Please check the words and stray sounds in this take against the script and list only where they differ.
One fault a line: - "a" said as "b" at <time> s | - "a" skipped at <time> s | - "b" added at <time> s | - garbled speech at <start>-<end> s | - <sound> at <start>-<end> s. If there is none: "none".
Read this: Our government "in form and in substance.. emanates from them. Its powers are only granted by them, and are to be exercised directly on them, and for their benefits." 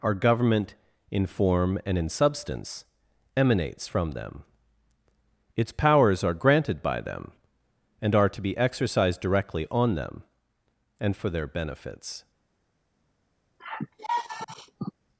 - "only" skipped at 6.3 s
- sigh at 13.6-14.9 s